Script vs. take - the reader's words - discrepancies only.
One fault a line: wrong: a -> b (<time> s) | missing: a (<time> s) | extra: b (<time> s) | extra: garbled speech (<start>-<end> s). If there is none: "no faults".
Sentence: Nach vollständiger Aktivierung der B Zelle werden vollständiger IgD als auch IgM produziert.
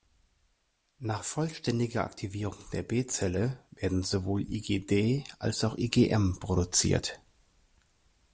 wrong: vollständiger -> sowohl (4.0 s)